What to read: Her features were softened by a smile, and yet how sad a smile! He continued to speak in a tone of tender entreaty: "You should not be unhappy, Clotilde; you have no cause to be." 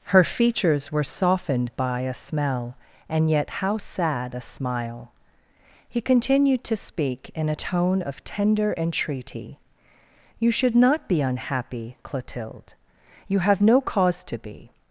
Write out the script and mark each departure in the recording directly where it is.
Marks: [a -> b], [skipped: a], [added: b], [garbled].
Her features were softened by a [smile, -> smell] and yet how sad a smile! He continued to speak in a tone of tender entreaty: "You should not be unhappy, Clotilde; you have no cause to be."